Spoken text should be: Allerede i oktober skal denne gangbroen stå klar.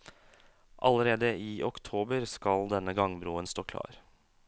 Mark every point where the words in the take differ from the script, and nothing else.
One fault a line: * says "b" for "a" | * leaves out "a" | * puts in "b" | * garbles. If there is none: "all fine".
all fine